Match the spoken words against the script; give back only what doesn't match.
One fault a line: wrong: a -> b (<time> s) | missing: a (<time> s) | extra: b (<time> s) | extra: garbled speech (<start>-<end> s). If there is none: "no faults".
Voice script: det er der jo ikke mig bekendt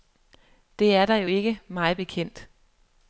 no faults